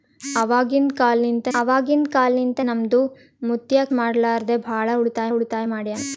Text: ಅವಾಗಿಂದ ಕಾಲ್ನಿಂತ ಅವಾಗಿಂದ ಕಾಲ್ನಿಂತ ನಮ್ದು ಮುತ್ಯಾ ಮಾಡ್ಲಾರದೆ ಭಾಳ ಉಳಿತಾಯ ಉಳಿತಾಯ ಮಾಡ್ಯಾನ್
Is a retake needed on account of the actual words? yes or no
no